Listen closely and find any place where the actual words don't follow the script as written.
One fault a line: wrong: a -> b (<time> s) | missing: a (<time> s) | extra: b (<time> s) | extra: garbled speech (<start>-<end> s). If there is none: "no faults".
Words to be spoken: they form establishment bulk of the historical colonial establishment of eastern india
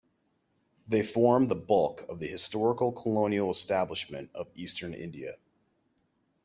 wrong: establishment -> the (1.4 s)